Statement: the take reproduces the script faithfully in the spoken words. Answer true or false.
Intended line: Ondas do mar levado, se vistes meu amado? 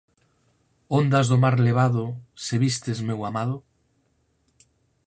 true